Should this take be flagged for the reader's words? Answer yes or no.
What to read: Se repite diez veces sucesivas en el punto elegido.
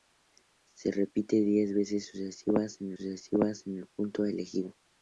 yes